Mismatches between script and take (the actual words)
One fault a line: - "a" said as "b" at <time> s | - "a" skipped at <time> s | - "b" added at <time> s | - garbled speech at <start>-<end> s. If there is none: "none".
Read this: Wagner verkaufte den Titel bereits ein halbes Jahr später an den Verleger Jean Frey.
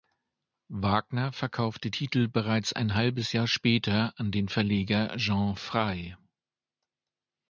- "den" skipped at 1.9 s